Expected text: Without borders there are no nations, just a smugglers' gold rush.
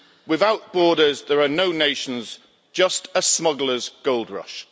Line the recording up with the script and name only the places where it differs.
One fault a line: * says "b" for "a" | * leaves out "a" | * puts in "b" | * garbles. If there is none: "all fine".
all fine